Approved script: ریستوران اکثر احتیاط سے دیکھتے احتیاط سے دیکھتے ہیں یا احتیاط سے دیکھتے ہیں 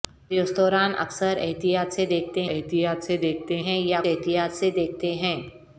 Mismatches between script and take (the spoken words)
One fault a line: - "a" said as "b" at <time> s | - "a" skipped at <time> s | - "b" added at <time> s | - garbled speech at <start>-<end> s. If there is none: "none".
none